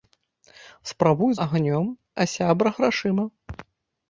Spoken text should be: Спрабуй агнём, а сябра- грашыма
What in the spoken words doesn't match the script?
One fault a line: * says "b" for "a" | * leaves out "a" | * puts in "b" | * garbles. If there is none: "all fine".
all fine